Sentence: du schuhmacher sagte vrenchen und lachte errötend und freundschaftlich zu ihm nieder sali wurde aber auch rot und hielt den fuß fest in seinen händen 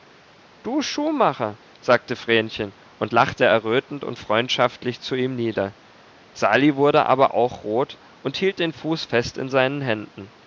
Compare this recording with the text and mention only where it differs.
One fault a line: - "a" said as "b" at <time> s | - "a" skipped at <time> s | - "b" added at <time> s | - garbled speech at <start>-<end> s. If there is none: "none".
none